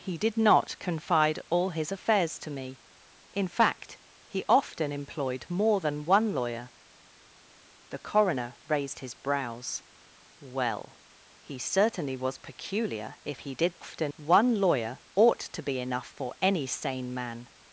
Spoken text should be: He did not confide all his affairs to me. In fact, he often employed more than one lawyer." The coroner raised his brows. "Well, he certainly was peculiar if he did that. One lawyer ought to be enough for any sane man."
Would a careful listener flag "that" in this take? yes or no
yes